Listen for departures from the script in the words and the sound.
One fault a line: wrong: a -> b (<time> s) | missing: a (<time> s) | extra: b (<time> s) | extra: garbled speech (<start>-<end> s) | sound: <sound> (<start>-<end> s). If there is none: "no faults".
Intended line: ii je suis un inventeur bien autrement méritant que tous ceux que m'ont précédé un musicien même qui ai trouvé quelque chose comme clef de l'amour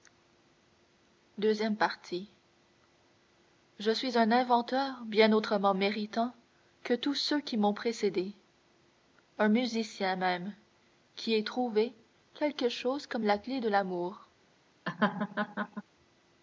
wrong: que -> qui (7.4 s)
extra: la (13.2 s)
sound: laugh (14.9-15.8 s)